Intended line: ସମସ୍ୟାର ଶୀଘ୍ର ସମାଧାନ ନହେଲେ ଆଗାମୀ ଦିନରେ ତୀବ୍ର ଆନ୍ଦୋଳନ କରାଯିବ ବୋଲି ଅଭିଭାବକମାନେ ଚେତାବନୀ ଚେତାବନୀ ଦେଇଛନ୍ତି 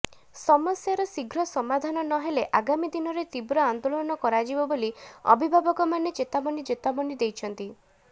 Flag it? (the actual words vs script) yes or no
no